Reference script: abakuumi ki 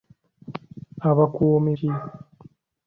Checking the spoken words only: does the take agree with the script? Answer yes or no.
yes